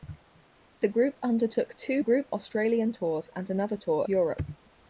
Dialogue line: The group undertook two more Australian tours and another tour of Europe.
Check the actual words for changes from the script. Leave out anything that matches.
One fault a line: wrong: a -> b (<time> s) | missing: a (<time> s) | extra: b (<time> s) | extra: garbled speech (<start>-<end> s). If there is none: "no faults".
wrong: more -> group (2.0 s)
missing: of (4.1 s)